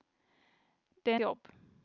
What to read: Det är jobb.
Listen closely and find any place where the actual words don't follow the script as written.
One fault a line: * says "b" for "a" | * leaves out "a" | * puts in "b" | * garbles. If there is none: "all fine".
all fine